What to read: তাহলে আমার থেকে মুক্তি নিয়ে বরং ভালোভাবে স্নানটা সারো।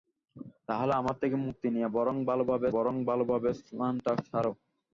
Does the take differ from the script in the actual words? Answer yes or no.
yes